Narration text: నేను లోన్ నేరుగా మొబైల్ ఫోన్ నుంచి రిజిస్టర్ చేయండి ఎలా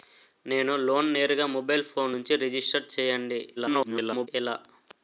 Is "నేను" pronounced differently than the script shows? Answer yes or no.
no